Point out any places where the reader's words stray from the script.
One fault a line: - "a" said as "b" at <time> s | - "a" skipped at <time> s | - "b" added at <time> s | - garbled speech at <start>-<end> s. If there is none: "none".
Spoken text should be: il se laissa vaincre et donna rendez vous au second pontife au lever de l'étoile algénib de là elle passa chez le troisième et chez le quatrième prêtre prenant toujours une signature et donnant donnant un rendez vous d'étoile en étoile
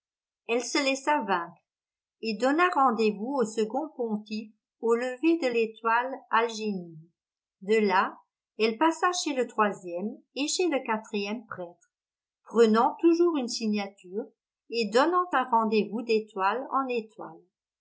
- "il" said as "elle" at 0.5 s
- "donnant" skipped at 15.3 s